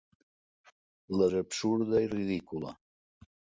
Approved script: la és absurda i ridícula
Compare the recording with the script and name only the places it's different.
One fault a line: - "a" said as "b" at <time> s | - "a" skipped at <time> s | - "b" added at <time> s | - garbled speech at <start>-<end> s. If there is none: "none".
none